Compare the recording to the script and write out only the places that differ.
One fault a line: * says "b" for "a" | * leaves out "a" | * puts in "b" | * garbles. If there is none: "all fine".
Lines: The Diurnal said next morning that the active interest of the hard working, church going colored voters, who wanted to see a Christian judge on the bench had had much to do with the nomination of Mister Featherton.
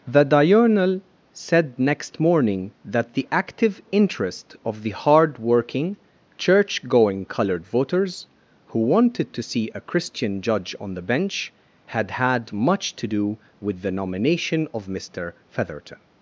all fine